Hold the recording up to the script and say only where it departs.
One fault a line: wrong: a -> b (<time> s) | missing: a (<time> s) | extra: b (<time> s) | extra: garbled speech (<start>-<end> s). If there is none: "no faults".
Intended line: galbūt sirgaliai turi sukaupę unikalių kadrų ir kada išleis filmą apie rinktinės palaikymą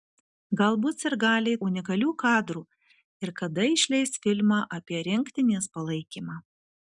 missing: turi sukaupę (1.6 s)